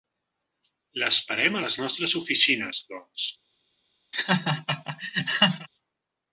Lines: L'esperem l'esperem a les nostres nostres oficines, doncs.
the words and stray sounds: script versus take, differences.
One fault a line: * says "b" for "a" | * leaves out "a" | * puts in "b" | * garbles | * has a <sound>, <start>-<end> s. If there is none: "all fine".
* leaves out "l'esperem"
* leaves out "nostres"
* has a laugh, 4.1-5.7 s